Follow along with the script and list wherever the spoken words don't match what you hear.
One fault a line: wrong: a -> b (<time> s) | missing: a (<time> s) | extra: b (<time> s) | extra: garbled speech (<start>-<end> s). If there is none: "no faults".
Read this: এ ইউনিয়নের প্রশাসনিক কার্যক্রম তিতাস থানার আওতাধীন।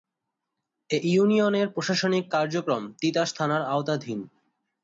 no faults